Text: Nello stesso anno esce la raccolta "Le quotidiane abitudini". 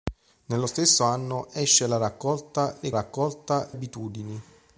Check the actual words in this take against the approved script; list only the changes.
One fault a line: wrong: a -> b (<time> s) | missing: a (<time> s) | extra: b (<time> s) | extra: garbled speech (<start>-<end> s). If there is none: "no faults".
wrong: quotidiane -> raccolta (2.9 s)